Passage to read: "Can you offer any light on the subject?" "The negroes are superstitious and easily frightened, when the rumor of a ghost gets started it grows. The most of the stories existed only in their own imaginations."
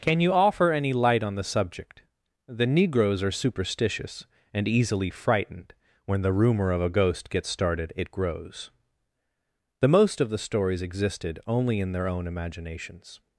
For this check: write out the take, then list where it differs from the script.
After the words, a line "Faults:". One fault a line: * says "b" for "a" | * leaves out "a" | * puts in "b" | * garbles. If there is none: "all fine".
"Can you offer any light on the subject?" "The negroes are superstitious and easily frightened, when the rumor of a ghost gets started it grows. The most of the stories existed only in their own imaginations."
Faults:
all fine